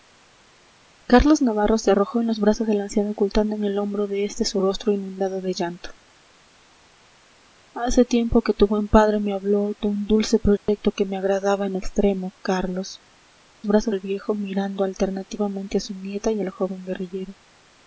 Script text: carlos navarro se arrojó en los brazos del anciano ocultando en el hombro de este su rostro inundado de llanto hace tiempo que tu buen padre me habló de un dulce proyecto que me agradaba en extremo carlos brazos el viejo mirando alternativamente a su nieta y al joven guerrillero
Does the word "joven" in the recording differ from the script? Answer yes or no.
no